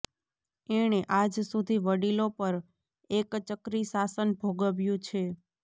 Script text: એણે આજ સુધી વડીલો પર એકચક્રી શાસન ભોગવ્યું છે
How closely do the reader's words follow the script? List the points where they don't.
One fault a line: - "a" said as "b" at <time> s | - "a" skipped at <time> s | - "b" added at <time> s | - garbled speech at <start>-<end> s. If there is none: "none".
none